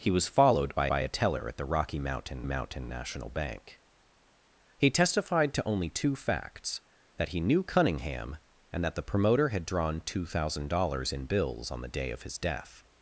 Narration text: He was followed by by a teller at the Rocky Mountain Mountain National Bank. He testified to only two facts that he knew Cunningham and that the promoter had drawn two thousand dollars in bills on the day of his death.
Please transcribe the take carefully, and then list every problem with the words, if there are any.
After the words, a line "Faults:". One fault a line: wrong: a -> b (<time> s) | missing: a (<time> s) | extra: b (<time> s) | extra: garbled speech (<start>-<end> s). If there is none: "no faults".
He was followed by by a teller at the Rocky Mountain Mountain National Bank. He testified to only two facts that he knew Cunningham and that the promoter had drawn two thousand dollars in bills on the day of his death.
Faults:
no faults